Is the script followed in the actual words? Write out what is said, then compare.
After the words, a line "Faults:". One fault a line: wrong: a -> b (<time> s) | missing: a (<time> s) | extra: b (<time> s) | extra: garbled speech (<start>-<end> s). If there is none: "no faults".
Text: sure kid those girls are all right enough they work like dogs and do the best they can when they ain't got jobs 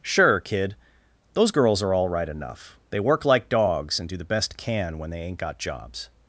sure kid those girls are all right enough they work like dogs and do the best can when they ain't got jobs
Faults:
missing: they (4.6 s)